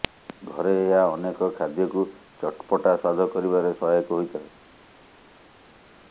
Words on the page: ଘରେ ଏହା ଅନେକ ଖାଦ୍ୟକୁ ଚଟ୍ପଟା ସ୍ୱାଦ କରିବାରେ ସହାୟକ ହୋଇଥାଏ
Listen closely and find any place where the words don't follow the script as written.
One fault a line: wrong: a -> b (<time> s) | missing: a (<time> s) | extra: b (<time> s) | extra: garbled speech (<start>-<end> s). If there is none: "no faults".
no faults